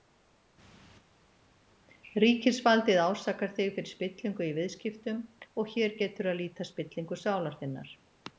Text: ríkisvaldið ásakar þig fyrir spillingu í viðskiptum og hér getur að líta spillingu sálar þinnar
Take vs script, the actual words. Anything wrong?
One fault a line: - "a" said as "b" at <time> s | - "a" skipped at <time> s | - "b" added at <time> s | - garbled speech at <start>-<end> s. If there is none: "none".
none